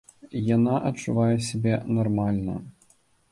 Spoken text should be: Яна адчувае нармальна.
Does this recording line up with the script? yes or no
no